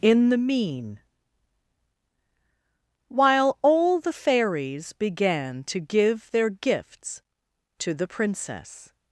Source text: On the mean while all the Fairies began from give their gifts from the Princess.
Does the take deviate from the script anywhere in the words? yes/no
yes